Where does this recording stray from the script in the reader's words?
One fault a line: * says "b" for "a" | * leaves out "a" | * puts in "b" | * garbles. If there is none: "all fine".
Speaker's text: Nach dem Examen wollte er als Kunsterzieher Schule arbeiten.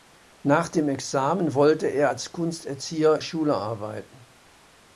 all fine